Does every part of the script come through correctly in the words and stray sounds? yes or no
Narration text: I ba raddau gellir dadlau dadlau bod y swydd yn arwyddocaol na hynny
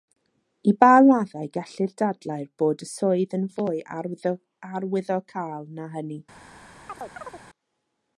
no